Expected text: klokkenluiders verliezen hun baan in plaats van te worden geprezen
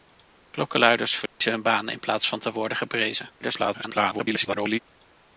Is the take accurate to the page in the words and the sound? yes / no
no